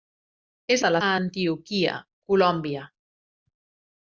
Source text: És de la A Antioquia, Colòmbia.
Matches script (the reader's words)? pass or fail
pass